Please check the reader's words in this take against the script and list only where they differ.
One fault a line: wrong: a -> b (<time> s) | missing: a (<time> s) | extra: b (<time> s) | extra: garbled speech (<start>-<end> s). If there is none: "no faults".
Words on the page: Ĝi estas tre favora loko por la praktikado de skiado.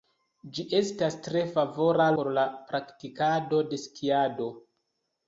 missing: loko (2.1 s)